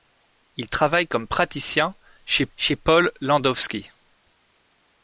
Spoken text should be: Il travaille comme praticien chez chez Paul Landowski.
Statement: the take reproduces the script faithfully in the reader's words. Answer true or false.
true